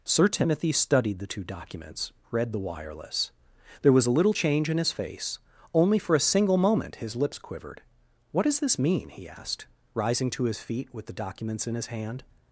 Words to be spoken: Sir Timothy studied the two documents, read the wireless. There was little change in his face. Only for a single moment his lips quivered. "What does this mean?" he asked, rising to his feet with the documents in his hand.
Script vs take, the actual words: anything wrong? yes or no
yes